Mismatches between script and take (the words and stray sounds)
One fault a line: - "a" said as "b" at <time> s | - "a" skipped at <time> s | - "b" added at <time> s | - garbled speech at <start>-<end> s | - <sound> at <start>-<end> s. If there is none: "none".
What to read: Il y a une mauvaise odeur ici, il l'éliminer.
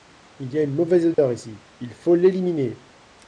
- dropout at 1.1-1.2 s
- "faut" added at 1.9 s